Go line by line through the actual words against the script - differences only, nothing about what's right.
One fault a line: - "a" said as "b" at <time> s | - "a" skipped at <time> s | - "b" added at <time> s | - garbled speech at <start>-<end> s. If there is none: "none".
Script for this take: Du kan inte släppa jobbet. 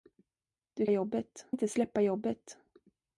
- "kan" said as "jobbet" at 0.9 s